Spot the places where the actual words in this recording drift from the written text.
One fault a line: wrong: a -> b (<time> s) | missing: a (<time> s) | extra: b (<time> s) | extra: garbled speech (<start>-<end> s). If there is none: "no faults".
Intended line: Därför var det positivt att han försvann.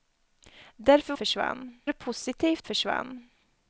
wrong: var -> försvann (1.1 s)
missing: att han (2.7 s)